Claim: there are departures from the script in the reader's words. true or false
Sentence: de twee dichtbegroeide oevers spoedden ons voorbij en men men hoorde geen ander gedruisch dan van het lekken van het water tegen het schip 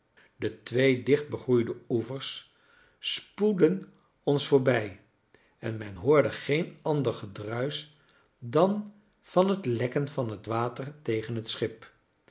true